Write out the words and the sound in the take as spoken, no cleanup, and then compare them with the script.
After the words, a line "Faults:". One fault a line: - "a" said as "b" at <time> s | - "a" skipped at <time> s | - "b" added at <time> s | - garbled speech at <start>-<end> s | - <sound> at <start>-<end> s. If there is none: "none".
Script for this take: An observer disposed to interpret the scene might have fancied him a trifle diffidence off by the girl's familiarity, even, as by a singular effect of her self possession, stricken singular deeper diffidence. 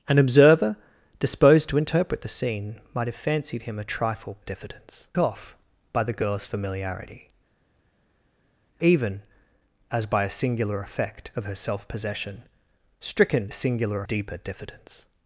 An observer disposed to interpret the scene might have fancied him a trifle diffidence off by the girl's familiarity, even, as by a singular effect of her self possession, stricken singular deeper diffidence.
Faults:
none